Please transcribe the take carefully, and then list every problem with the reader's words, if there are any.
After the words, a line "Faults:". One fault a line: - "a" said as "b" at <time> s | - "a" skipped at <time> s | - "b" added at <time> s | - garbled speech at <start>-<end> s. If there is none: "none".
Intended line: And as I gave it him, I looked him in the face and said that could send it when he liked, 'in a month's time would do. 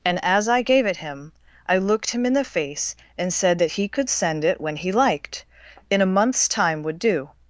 And as I gave it him, I looked him in the face and said that he could send it when he liked, 'in a month's time would do.
Faults:
- "he" added at 3.7 s